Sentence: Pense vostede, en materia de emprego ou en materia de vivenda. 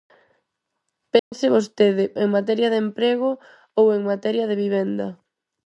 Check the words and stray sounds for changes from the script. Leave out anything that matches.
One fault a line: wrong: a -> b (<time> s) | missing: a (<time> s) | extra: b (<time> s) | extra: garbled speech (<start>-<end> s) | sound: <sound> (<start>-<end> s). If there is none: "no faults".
sound: dropout (1.2-1.3 s)